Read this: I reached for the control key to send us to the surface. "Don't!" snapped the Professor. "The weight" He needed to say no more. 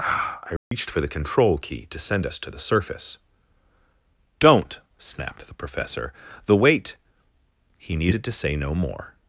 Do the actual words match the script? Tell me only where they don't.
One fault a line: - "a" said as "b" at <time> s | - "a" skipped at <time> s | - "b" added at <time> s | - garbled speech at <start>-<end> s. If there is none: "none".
none